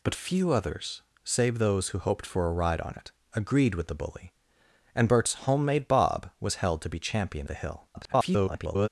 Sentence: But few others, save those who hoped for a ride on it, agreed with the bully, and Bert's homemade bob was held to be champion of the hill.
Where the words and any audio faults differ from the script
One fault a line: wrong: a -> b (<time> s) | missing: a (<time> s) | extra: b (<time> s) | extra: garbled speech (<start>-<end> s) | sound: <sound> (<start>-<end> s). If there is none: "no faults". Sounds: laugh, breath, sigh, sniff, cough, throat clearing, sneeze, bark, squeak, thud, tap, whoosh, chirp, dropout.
missing: of (7.5 s)
extra: garbled speech (7.9-8.9 s)